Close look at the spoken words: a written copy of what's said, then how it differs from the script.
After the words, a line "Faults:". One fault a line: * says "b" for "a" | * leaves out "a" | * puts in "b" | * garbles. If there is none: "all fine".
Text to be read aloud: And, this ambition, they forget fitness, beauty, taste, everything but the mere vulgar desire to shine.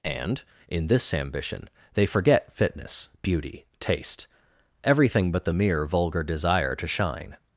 And, in this ambition, they forget fitness, beauty, taste, everything but the mere vulgar desire to shine.
Faults:
* puts in "in"